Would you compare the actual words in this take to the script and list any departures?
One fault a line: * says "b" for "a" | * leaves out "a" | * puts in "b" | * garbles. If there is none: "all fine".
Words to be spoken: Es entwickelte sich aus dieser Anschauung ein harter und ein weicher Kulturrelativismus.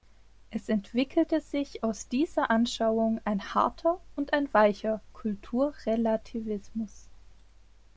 all fine